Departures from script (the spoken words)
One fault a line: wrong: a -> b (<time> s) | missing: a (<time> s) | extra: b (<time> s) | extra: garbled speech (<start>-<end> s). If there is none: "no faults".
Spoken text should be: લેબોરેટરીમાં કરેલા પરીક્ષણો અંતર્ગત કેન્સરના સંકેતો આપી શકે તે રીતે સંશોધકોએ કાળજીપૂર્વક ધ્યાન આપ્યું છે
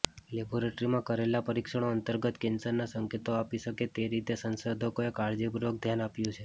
no faults